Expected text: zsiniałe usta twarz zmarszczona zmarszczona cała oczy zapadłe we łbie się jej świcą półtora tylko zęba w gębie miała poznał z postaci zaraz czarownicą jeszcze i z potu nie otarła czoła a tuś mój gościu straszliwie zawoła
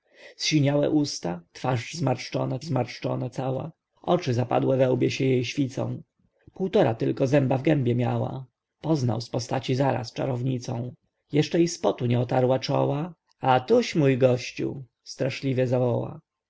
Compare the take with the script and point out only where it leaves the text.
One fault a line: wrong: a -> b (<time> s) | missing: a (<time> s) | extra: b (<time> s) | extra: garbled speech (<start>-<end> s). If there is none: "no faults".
no faults